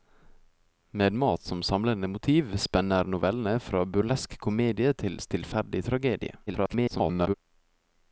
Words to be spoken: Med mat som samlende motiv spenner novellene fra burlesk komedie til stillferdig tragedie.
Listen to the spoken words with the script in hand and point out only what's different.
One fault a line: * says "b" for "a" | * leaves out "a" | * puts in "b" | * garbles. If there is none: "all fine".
* garbles